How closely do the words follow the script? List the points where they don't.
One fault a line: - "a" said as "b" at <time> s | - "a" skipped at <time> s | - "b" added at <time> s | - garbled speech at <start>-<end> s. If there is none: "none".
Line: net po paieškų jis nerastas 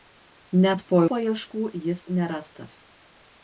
none